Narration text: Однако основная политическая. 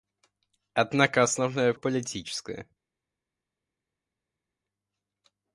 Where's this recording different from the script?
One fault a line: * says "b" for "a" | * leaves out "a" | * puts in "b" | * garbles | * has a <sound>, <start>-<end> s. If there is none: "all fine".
all fine